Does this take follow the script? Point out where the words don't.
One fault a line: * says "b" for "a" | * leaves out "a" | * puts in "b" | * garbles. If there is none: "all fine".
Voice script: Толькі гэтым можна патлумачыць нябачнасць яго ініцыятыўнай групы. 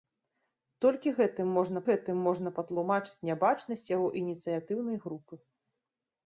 * puts in "гэтым можна"